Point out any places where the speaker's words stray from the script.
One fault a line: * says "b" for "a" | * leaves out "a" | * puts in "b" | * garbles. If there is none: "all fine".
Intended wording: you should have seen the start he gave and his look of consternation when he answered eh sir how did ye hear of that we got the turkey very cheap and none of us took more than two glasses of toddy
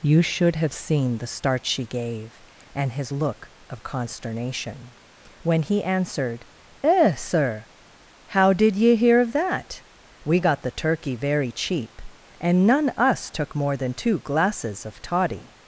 * says "she" for "he"
* leaves out "of"